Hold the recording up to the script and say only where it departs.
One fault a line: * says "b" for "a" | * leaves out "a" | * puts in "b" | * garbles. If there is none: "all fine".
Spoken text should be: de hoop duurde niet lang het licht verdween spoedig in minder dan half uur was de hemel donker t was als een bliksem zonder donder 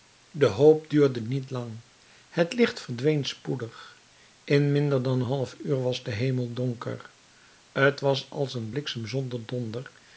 all fine